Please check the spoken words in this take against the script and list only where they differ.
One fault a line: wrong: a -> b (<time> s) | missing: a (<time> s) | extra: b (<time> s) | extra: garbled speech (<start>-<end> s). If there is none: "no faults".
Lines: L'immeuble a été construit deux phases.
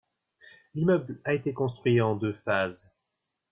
extra: en (2.0 s)